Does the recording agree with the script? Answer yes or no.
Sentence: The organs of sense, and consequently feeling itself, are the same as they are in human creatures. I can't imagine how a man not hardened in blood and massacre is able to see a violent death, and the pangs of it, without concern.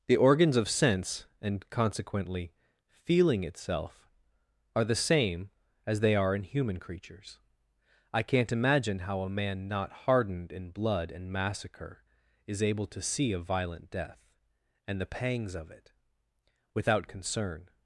yes